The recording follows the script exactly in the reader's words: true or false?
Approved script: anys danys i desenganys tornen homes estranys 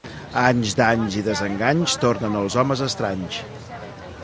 false